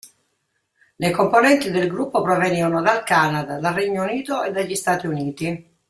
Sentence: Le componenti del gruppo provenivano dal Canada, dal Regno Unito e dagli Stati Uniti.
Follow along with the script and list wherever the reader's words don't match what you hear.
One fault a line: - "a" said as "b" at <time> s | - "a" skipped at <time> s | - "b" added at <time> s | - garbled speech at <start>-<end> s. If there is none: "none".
none